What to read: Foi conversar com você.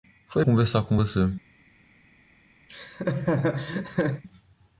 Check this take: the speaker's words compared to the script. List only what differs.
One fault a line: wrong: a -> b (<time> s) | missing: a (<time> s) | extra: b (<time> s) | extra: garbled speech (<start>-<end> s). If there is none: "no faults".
no faults